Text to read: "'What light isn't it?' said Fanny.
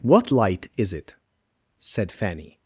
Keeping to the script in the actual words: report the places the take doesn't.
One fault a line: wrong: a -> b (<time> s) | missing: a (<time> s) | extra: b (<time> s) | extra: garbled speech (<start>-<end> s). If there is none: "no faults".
wrong: isn't -> is (0.8 s)